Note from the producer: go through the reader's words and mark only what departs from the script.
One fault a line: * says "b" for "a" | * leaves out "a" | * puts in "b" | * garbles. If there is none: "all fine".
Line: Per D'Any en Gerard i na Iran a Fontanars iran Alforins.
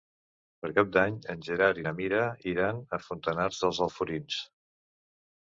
* puts in "Cap"
* puts in "Mira"
* says "dels" for "iran"